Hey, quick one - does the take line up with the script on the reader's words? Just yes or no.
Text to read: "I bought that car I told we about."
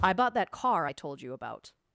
no